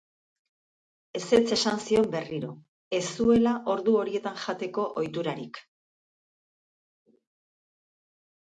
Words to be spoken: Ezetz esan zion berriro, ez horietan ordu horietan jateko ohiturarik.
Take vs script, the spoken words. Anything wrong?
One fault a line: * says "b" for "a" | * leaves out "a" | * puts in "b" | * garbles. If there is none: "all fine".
* says "zuela" for "horietan"